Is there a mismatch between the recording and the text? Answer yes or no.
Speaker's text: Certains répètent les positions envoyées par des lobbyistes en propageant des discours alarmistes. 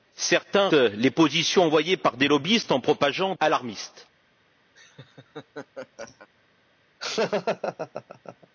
yes